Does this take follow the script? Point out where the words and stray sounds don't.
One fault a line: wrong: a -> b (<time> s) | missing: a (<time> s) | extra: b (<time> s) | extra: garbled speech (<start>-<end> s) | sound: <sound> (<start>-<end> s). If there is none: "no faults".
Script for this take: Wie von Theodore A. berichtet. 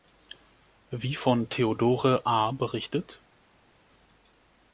no faults